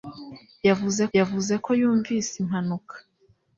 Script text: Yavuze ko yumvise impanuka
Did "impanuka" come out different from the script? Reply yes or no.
no